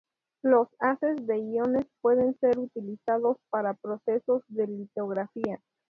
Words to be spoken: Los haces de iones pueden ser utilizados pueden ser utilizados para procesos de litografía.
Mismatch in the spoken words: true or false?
true